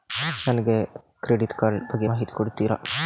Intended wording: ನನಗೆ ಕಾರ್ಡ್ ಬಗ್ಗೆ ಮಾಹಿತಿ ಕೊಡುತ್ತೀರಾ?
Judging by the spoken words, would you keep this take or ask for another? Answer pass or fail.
fail